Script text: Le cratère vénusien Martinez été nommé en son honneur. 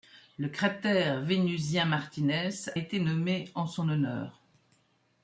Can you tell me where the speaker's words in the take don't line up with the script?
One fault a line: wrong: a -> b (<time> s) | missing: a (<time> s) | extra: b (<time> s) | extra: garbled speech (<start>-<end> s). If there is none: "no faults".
no faults